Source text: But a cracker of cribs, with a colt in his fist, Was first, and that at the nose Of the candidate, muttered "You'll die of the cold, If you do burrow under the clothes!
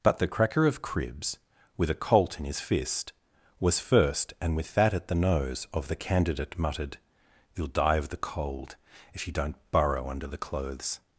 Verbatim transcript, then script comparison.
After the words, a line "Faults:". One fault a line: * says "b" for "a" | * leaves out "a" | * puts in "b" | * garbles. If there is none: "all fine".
But the cracker of cribs, with a colt in his fist, Was first, and with that at the nose Of the candidate, muttered "You'll die of the cold, If you don't burrow under the clothes!
Faults:
* says "the" for "a"
* puts in "with"
* says "don't" for "do"